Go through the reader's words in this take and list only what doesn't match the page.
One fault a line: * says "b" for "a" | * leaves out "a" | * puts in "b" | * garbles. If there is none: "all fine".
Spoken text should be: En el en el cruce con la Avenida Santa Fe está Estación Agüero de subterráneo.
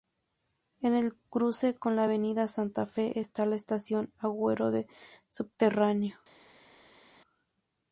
* leaves out "en el"
* puts in "la"